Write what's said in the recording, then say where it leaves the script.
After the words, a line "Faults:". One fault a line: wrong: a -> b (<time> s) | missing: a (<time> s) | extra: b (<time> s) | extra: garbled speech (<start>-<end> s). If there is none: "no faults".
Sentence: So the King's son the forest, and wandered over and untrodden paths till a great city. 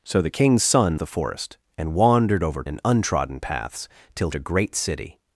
So the King's son the forest, and wandered over and untrodden paths till a great city.
Faults:
no faults